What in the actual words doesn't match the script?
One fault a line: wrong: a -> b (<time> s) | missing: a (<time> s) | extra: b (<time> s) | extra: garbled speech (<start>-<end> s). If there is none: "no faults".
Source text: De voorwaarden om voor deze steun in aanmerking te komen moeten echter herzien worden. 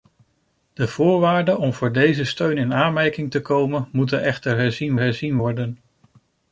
extra: herzien (5.0 s)